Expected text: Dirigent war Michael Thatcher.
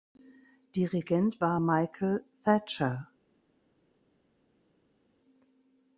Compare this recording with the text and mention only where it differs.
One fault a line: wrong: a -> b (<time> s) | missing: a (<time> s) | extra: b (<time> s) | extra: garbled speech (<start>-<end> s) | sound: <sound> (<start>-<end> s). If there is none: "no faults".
no faults